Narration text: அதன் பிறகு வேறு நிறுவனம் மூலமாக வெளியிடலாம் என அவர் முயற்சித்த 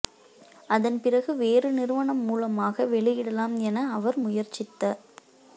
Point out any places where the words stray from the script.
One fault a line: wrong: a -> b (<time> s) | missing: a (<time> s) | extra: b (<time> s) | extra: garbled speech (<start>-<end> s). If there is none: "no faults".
no faults